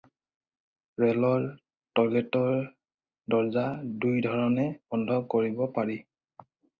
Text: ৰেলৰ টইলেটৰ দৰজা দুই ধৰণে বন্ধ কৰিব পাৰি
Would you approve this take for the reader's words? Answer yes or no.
yes